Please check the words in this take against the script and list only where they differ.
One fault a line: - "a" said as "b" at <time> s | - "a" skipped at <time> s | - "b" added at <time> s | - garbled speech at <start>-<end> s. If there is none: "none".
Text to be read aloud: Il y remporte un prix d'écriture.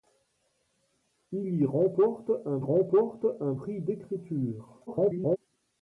- "remporte un" added at 2.6 s
- garbled speech at 4.9-5.4 s